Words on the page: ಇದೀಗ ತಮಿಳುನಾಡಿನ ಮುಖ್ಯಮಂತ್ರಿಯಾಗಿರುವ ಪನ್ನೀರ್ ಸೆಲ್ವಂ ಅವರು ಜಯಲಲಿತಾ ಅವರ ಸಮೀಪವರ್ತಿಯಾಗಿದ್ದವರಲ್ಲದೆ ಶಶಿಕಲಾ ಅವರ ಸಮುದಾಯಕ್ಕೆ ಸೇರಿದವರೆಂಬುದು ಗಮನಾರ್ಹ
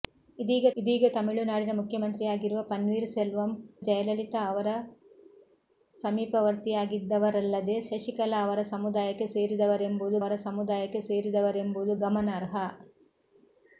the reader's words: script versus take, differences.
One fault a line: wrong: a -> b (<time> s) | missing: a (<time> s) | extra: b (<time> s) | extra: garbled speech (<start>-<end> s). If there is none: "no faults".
extra: ಇದೀಗ (0.8 s)
missing: ಅವರು (3.5 s)
extra: ಅವರ ಸಮುದಾಯಕ್ಕೆ ಸೇರಿದವರೆಂಬುದು (10.2 s)